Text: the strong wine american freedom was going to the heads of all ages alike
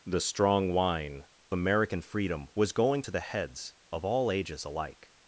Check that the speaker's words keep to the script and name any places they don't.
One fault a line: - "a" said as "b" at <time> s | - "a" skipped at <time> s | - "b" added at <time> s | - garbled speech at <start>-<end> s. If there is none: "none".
none